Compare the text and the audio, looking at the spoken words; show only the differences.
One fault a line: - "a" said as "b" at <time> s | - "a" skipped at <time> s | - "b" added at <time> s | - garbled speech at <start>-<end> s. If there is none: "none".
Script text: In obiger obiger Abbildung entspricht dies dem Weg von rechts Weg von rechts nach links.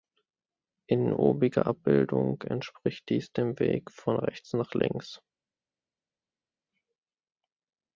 - "obiger" skipped at 1.7 s
- "Weg von rechts" skipped at 4.5 s